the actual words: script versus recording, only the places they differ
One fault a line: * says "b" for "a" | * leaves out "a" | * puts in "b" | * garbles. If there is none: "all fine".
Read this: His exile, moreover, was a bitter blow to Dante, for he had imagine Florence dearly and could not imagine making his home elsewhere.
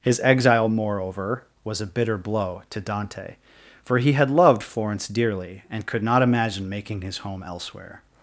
* says "loved" for "imagine"